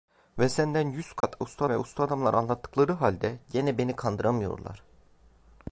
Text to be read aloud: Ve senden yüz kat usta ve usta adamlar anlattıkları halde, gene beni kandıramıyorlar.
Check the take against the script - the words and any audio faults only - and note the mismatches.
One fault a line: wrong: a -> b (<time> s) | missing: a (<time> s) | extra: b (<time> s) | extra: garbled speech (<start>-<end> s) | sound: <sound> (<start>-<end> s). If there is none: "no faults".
sound: dropout (1.2-1.2 s)